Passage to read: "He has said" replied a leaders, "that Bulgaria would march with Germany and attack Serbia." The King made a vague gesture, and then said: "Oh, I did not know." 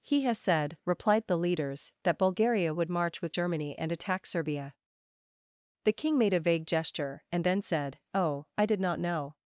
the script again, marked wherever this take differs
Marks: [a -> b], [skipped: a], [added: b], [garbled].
"He has said" replied [a -> the] leaders, "that Bulgaria would march with Germany and attack Serbia." The King made a vague gesture, and then said: "Oh, I did not know."